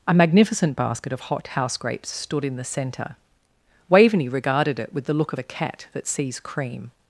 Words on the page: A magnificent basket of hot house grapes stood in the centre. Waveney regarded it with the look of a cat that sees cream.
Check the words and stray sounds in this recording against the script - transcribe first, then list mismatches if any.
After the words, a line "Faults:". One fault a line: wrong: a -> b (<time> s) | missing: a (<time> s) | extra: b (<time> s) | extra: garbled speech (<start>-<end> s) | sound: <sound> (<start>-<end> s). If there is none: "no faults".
A magnificent basket of hot house grapes stood in the centre. Waveney regarded it with the look of a cat that sees cream.
Faults:
no faults